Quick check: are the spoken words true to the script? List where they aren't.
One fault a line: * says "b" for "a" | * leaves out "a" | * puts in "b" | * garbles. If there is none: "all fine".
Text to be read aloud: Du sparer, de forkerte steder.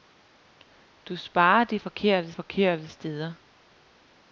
* puts in "forkerte"